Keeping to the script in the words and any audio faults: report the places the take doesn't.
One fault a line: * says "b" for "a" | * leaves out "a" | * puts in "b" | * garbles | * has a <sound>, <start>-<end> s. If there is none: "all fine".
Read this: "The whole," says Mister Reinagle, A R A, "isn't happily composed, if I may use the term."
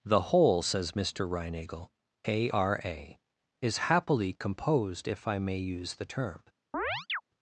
* says "is" for "isn't"
* has a chirp, 6.7-7.2 s